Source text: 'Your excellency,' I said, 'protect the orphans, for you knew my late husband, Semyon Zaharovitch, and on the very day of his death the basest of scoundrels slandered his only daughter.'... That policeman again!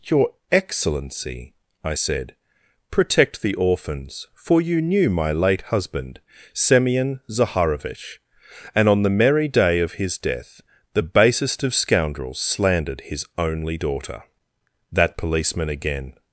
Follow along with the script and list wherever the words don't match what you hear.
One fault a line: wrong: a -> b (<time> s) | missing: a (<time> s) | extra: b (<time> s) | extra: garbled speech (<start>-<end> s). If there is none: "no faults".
wrong: very -> merry (9.1 s)